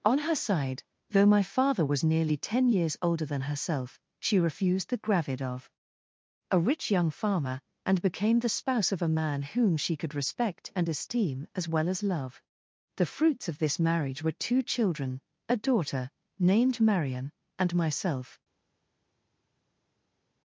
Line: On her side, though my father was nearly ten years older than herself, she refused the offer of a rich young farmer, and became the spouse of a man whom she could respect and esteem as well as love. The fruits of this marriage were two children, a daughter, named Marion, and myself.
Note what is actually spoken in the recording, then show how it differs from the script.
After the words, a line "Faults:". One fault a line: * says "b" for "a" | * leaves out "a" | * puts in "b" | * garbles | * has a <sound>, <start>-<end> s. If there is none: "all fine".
On her side, though my father was nearly ten years older than herself, she refused the gravid of a rich young farmer, and became the spouse of a man whom she could respect and esteem as well as love. The fruits of this marriage were two children, a daughter, named Marion, and myself.
Faults:
* says "gravid" for "offer"